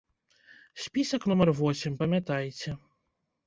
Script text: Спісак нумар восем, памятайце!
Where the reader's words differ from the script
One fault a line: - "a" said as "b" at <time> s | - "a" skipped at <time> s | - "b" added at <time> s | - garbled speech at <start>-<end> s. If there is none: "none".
none